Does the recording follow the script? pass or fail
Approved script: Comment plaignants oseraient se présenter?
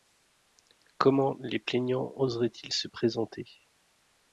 fail